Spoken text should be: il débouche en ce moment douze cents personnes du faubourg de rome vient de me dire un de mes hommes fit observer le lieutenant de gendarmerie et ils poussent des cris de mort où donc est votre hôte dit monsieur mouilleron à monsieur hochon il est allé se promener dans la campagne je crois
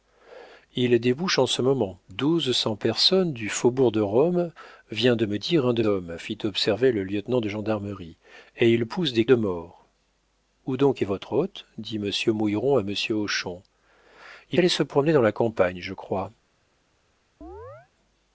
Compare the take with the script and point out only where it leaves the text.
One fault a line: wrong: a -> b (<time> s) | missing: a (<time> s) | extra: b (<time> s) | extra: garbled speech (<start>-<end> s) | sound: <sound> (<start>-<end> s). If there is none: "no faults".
missing: mes (5.8 s)
missing: cris (9.2 s)
missing: est (14.6 s)
sound: chirp (17.4-17.9 s)